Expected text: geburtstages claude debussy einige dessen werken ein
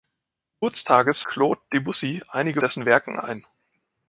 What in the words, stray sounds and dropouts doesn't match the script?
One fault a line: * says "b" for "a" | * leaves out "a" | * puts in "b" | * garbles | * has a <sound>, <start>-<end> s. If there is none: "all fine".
all fine